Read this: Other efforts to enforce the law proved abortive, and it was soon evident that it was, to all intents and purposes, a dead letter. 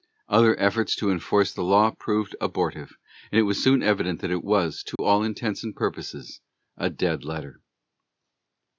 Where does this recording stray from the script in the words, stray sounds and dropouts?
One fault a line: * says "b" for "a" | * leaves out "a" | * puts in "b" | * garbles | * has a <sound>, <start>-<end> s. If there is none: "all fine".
* has a dropout, 5.0-5.0 s